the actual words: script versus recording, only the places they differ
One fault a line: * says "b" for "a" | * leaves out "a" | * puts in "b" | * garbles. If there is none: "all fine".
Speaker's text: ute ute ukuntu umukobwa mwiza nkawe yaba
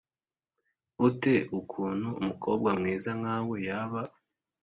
* leaves out "ute"